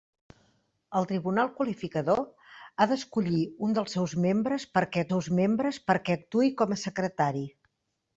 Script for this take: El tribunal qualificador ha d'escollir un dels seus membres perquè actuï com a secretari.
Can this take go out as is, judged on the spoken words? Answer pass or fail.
fail